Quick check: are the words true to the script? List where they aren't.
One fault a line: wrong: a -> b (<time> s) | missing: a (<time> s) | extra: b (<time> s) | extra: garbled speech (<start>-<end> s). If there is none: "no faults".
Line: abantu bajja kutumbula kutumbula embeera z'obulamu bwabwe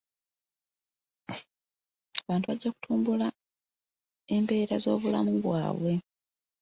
missing: kutumbula (3.3 s)